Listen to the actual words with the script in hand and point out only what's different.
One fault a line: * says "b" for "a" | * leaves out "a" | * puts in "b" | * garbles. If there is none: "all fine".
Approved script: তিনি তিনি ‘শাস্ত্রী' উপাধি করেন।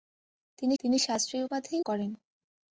all fine